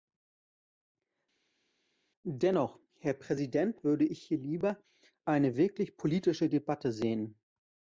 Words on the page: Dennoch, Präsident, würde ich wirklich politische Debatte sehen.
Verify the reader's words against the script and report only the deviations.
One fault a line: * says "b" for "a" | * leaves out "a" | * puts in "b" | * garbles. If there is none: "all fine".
* puts in "Herr"
* puts in "hier lieber eine"